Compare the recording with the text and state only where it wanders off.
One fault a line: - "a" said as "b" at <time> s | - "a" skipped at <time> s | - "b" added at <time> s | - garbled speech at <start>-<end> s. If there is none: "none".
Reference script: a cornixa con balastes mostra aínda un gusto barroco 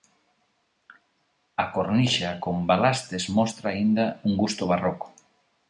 none